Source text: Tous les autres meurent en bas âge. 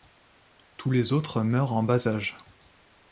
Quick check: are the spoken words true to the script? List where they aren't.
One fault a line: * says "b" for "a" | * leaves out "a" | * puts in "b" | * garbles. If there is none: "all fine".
all fine